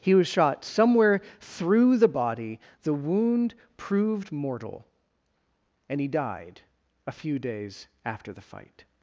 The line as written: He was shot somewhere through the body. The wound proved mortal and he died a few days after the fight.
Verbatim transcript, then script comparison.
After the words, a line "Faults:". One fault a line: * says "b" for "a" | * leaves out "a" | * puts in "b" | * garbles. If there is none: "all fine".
He was shot somewhere through the body. The wound proved mortal and he died a few days after the fight.
Faults:
all fine